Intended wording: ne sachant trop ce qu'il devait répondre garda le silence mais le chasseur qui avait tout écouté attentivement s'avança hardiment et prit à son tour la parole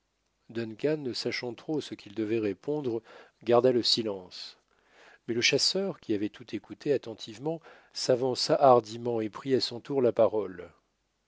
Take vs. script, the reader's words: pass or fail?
pass